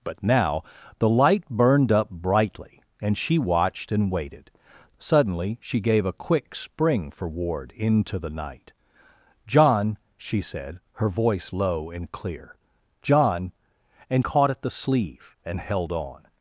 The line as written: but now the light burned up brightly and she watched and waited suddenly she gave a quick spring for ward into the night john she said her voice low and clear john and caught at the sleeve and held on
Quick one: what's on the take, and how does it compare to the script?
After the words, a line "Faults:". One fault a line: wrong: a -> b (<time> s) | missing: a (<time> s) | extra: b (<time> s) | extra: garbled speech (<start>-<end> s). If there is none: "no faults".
but now the light burned up brightly and she watched and waited suddenly she gave a quick spring for ward into the night john she said her voice low and clear john and caught at the sleeve and held on
Faults:
no faults